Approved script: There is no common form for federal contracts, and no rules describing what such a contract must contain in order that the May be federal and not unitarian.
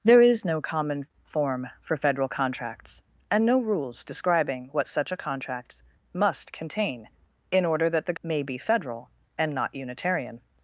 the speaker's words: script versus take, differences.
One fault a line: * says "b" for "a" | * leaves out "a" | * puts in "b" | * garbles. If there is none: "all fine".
all fine